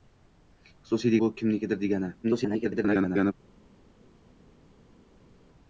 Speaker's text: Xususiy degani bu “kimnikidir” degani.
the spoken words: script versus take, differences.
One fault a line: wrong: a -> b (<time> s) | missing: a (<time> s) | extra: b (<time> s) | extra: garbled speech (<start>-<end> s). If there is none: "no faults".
missing: degani (1.1 s)
extra: garbled speech (2.2-3.3 s)